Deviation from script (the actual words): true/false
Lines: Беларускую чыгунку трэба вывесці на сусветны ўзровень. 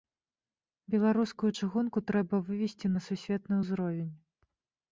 false